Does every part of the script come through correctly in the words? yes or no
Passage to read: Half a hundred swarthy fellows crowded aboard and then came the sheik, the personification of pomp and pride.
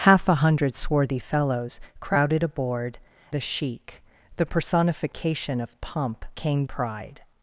no